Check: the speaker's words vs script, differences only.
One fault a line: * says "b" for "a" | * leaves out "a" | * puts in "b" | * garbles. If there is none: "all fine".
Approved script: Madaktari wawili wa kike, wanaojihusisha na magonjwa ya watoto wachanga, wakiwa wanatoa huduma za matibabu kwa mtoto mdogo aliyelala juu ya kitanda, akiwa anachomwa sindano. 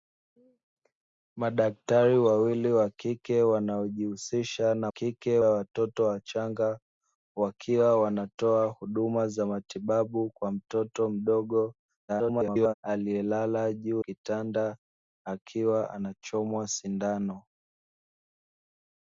* says "kike" for "magonjwa"
* garbles
* leaves out "ya"